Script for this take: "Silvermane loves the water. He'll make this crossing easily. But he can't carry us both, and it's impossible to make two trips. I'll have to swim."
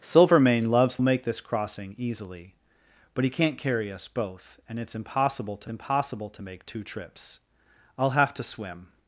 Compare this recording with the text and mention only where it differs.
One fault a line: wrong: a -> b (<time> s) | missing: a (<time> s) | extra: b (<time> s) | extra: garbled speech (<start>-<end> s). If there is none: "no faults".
missing: the water He'll (1.0 s)
extra: impossible to (5.7 s)